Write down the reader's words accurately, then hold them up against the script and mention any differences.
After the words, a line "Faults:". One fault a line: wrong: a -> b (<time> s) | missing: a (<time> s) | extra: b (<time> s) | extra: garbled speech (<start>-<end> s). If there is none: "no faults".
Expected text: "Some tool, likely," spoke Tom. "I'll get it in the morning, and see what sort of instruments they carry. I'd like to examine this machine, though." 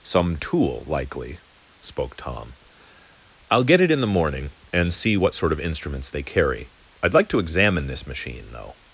"Some tool, likely," spoke Tom. "I'll get it in the morning, and see what sort of instruments they carry. I'd like to examine this machine, though."
Faults:
no faults